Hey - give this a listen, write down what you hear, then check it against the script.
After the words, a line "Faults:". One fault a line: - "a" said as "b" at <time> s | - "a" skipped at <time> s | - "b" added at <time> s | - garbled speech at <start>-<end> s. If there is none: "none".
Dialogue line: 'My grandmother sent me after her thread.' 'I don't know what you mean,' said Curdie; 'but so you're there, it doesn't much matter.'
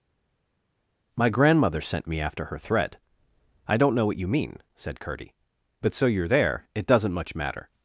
'My grandmother sent me after her thread.' 'I don't know what you mean,' said Curdie; 'but so you're there, it doesn't much matter.'
Faults:
none